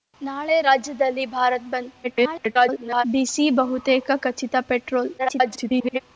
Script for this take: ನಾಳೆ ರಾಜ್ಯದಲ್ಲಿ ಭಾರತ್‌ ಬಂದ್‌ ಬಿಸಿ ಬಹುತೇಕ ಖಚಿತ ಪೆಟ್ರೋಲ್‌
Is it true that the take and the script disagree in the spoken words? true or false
true